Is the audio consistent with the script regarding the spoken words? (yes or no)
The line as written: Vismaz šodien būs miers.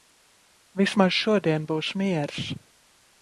yes